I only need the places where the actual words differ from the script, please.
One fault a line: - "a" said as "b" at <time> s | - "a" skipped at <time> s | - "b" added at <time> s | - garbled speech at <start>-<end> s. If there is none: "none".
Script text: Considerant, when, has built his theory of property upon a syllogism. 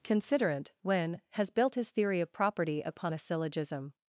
none